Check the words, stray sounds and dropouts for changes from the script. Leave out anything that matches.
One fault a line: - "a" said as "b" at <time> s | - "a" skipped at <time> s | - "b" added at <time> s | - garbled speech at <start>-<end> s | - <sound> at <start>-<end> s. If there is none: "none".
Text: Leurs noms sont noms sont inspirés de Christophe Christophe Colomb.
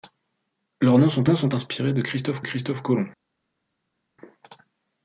none